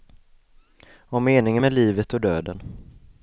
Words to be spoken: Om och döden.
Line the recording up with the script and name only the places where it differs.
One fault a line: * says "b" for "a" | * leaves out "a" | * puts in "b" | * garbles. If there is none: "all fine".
* puts in "meningen med livet"